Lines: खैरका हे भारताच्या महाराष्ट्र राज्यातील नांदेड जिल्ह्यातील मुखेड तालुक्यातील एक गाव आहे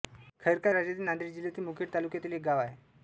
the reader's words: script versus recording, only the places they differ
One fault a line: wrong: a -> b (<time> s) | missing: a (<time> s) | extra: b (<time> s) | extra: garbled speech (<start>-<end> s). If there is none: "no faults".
missing: हे भारताच्या महाराष्ट्र (0.7 s)